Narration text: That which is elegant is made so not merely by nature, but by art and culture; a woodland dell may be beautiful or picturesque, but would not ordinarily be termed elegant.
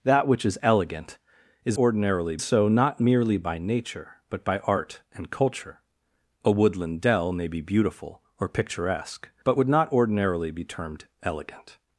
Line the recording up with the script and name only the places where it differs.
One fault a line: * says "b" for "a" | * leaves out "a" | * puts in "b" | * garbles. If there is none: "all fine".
* says "ordinarily" for "made"